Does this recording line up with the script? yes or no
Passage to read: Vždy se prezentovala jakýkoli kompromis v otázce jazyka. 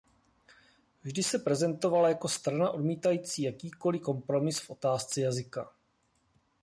no